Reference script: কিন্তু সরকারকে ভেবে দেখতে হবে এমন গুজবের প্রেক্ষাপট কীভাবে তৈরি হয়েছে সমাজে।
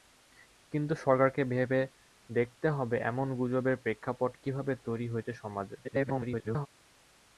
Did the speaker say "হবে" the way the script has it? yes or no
yes